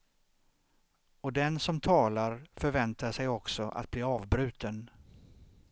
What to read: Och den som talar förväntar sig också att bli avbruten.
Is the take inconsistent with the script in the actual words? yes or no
no